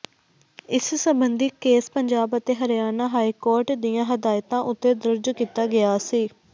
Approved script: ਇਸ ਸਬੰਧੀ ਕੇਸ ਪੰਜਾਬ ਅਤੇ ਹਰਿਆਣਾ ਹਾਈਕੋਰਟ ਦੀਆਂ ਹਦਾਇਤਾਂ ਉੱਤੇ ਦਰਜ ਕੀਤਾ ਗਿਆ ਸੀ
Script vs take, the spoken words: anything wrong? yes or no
no